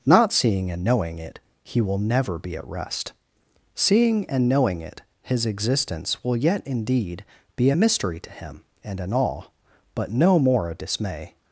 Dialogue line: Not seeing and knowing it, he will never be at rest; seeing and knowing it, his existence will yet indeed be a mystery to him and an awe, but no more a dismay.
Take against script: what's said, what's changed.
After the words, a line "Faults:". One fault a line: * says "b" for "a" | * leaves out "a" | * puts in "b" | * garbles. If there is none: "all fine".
Not seeing and knowing it, he will never be at rest; seeing and knowing it, his existence will yet indeed be a mystery to him and an awe, but no more a dismay.
Faults:
all fine